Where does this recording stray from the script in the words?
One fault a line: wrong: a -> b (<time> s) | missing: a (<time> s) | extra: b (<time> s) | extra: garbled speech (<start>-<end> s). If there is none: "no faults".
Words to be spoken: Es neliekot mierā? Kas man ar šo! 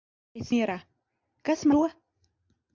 missing: neliekot (0.5 s)
missing: man ar (1.7 s)